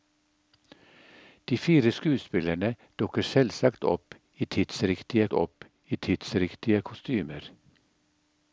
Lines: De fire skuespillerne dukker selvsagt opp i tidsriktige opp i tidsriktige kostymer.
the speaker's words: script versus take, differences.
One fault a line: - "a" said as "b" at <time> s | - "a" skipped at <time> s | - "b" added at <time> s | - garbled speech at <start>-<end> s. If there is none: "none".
none